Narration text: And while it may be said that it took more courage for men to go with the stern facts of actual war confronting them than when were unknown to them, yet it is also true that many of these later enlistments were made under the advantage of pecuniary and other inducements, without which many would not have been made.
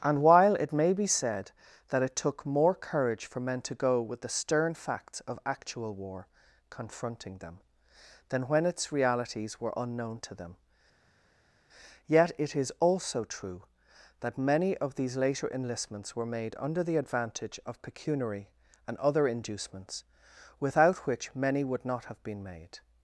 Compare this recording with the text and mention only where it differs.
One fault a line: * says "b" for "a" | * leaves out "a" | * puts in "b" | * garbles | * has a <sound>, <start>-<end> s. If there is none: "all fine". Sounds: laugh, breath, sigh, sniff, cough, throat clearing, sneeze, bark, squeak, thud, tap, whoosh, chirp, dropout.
* puts in "its realities"